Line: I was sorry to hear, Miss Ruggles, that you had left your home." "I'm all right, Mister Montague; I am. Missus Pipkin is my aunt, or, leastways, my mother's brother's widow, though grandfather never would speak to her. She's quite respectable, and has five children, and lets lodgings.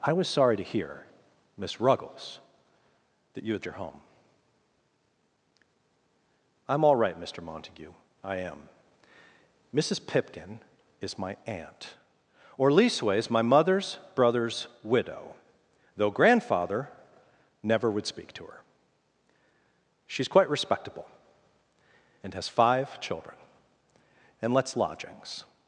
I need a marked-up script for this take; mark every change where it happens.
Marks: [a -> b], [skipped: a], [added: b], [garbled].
I was sorry to hear, Miss Ruggles, that you had [skipped: left] your home." "I'm all right, Mister Montague; I am. Missus Pipkin is my aunt, or, leastways, my mother's brother's widow, though grandfather never would speak to her. She's quite respectable, and has five children, and lets lodgings.